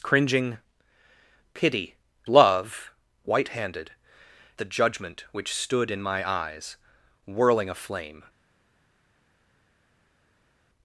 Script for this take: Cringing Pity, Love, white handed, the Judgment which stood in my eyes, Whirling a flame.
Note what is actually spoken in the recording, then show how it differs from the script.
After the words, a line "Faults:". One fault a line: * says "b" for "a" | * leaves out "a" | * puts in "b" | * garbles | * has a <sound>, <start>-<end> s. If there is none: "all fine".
Cringing Pity, Love, white handed, the Judgment which stood in my eyes, Whirling a flame.
Faults:
all fine